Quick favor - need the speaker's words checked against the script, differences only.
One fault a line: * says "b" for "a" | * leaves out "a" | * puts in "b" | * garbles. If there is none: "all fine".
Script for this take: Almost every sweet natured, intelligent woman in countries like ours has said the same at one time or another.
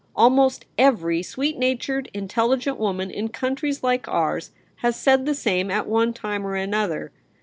all fine